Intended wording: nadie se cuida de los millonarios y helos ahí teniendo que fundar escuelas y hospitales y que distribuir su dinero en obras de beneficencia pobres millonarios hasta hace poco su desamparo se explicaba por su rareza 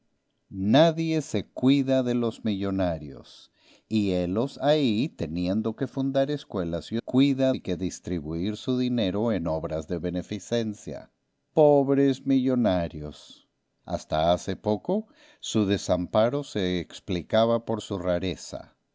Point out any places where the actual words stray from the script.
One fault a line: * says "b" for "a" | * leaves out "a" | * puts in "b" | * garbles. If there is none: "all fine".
* says "cuida" for "hospitales"